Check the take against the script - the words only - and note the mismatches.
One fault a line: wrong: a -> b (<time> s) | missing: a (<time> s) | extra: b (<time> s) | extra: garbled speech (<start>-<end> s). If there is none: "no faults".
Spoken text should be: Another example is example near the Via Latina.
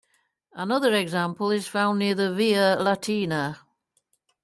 wrong: example -> found (1.7 s)